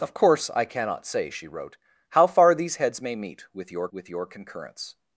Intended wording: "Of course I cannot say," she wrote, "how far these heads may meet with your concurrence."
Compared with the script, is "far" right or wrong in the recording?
right